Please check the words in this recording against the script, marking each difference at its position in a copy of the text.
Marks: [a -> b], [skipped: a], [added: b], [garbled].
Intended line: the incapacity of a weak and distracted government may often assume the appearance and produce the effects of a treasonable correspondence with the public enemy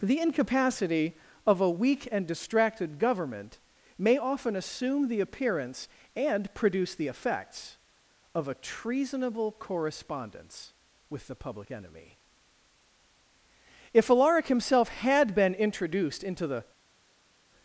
the incapacity of a weak and distracted government may often assume the appearance and produce the effects of a treasonable correspondence with the public enemy [added: if alaric himself had been introduced into the]